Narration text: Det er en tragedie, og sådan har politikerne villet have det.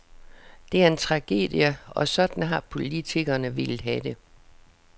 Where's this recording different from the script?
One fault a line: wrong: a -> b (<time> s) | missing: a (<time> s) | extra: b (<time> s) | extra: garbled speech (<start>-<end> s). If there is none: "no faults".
no faults